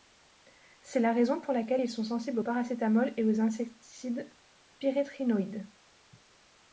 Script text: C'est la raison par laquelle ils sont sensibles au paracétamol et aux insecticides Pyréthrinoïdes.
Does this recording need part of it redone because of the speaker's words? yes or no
yes